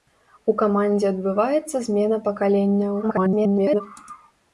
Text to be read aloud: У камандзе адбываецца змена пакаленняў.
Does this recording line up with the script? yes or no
no